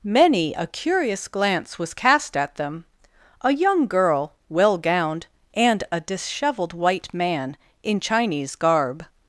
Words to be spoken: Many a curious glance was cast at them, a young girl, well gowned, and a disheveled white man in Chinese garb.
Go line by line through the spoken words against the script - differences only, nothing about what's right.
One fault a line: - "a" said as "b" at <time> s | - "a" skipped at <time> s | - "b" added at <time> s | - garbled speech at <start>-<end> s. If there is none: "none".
none